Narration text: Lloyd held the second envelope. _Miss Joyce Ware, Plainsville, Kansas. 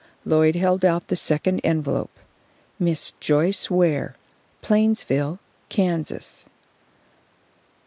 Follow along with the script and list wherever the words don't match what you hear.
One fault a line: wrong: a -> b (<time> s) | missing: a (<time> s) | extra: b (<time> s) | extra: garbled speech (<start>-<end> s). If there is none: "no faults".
extra: out (0.8 s)